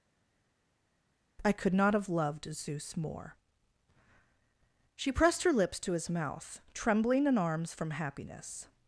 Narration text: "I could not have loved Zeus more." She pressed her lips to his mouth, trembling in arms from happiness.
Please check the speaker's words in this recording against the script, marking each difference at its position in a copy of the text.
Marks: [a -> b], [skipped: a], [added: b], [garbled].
"I could not have loved Zeus more." She pressed her lips to his mouth, trembling in arms from happiness.